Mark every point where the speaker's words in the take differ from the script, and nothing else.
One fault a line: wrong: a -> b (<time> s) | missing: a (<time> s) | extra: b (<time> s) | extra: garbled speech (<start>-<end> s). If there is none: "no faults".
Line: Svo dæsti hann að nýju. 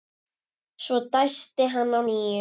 no faults